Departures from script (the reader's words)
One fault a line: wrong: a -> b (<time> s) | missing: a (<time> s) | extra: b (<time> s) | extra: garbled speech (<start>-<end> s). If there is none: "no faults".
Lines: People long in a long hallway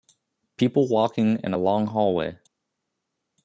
wrong: long -> walking (0.9 s)